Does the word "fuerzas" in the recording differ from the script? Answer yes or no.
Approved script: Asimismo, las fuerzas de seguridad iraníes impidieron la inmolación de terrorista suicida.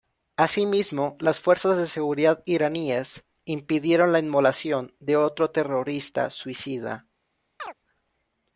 no